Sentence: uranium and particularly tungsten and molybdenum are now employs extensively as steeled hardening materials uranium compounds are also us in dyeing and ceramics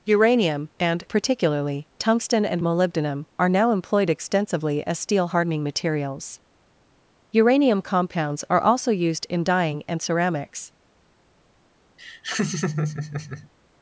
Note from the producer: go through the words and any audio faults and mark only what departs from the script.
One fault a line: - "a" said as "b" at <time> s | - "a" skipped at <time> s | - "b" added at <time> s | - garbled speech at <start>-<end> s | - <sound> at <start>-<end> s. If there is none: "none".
- "employs" said as "employed" at 3.7 s
- "steeled" said as "steel" at 5.0 s
- "us" said as "used" at 8.9 s
- laugh at 12.0-13.5 s